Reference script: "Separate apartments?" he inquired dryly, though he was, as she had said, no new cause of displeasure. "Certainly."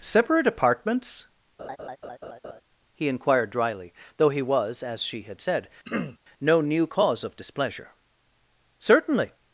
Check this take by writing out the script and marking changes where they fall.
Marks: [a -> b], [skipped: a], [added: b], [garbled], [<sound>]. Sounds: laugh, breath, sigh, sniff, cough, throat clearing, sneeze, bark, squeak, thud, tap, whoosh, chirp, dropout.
"Separate apartments?" [laugh] he inquired dryly, though he was, as she had said, [throat clearing] no new cause of displeasure. "Certainly."